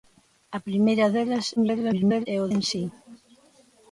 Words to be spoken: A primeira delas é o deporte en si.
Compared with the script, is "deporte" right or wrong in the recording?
wrong